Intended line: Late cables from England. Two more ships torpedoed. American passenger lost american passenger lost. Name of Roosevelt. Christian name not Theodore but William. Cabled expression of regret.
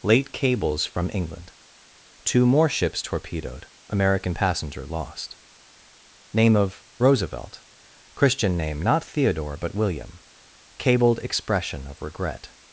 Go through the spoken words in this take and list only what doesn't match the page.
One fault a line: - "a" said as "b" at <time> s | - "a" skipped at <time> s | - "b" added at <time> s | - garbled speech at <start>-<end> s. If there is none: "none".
- "american passenger lost" skipped at 5.3 s